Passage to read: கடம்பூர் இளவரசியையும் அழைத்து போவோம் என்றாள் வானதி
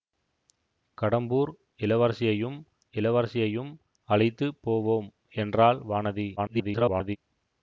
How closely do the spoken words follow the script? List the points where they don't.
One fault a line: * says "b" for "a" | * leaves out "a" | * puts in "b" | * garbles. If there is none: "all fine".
* puts in "இளவரசியையும்"
* garbles